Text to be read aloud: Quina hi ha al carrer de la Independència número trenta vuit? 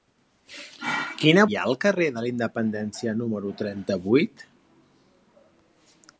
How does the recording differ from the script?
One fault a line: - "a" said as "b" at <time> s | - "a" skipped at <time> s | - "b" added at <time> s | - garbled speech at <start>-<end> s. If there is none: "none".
none